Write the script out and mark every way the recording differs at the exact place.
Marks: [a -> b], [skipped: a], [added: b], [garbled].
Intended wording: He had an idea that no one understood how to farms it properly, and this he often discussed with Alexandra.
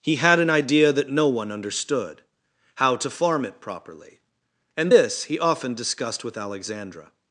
He had an idea that no one understood how to [farms -> farm] it properly, and this he often discussed with Alexandra.